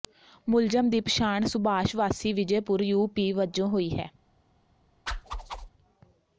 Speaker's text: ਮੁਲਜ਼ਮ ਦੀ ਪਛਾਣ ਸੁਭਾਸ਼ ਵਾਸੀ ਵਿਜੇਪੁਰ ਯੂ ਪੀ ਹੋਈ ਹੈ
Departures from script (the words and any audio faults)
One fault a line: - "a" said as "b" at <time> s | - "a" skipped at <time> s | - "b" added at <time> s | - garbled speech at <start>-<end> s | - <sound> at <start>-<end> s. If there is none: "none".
- "ਵਜੋਂ" added at 3.3 s
- whoosh at 5.1-5.7 s